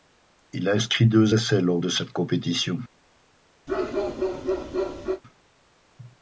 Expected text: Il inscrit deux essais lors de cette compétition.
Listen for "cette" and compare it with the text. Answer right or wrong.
right